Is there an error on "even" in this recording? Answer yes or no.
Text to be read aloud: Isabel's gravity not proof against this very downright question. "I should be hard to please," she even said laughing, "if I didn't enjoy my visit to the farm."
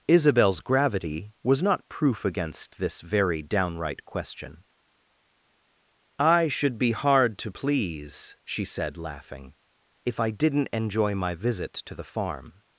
yes